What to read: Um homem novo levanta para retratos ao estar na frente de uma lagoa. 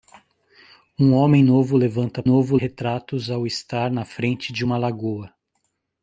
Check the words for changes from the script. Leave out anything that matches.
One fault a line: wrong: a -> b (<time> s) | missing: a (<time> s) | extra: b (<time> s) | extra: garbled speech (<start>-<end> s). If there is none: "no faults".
wrong: para -> novo (2.2 s)